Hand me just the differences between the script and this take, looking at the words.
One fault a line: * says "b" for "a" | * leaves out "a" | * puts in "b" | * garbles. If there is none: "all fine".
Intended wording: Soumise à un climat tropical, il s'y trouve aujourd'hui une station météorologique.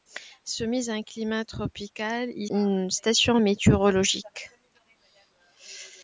* leaves out "s'y trouve aujourd'hui"